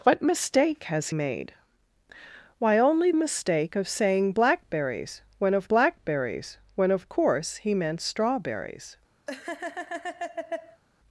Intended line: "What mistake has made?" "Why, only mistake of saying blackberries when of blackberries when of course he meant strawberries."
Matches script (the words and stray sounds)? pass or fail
fail